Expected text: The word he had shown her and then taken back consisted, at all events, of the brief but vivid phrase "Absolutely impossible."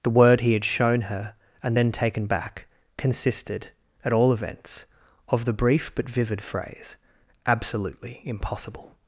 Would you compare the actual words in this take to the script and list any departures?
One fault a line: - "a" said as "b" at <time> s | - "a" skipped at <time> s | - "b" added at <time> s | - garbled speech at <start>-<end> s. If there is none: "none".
none